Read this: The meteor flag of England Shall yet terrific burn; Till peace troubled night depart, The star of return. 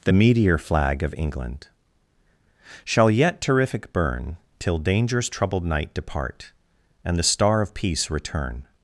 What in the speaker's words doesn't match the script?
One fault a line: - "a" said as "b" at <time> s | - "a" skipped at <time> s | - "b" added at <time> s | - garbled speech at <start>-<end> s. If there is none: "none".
- "peace" said as "danger's" at 4.8 s
- "And" added at 7.0 s
- "peace" added at 7.7 s